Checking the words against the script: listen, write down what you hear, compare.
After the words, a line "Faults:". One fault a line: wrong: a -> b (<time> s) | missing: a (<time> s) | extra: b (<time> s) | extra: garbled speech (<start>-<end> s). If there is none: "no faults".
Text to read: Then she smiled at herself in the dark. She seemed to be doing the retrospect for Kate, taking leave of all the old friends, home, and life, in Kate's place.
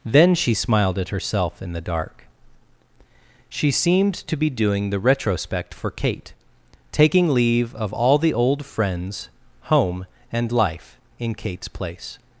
Then she smiled at herself in the dark. She seemed to be doing the retrospect for Kate, taking leave of all the old friends, home, and life, in Kate's place.
Faults:
no faults